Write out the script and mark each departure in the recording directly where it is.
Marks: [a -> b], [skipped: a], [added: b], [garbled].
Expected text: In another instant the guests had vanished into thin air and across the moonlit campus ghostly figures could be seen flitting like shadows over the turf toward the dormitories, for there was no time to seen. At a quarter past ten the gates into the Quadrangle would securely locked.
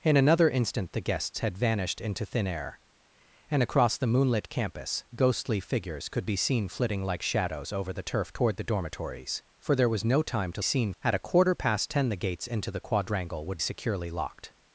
In another instant the guests had vanished into thin air and across the moonlit campus ghostly figures could be seen flitting like shadows over the turf toward the dormitories, for there was no time to seen. At a quarter past ten the gates into the Quadrangle would securely locked.